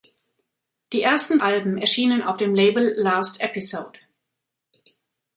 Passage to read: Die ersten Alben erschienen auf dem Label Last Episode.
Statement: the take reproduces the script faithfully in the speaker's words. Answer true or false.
true